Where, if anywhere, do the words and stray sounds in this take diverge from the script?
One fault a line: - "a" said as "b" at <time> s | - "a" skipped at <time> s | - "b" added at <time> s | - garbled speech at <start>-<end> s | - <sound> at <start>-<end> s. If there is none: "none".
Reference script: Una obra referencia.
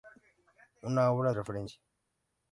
none